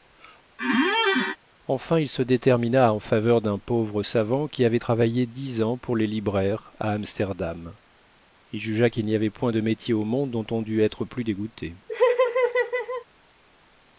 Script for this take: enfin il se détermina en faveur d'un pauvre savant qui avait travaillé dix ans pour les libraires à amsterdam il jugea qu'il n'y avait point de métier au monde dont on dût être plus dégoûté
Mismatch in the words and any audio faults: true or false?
true